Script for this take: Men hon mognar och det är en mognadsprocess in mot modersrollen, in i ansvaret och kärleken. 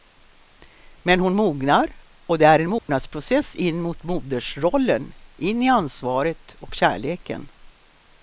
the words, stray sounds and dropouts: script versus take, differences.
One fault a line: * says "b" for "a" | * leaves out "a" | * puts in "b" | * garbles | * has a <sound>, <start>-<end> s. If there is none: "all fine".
* has a dropout, 2.8-2.9 s